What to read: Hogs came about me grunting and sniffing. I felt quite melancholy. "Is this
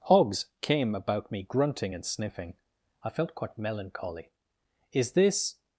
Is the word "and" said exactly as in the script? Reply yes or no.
yes